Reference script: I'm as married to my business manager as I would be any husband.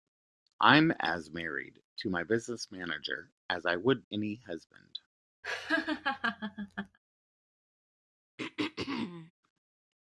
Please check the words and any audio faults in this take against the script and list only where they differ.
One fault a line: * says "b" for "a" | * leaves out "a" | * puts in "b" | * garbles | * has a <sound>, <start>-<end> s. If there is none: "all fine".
* leaves out "be"
* has a laugh, 5.4-7.0 s
* has a throat clearing, 8.4-9.3 s